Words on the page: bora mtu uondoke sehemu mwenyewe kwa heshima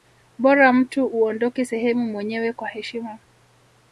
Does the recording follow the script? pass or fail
pass